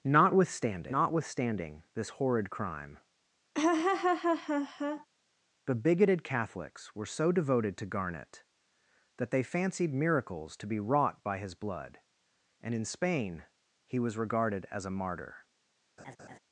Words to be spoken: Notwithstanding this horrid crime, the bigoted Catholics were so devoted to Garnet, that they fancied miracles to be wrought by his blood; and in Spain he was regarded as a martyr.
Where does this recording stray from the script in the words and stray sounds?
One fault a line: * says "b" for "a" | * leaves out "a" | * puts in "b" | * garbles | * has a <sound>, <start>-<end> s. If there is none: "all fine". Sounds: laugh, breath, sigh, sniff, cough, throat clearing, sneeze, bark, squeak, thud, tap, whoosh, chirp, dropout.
* puts in "notwithstanding"
* has a laugh, 3.5-5.1 s
* has a laugh, 16.0-16.4 s